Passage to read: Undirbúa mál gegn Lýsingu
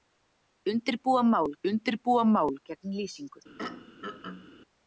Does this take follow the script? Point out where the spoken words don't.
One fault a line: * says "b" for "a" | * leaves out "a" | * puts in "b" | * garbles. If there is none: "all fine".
* puts in "undirbúa mál"